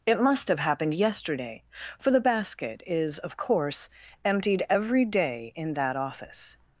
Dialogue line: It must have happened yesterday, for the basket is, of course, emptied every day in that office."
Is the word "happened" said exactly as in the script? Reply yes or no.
yes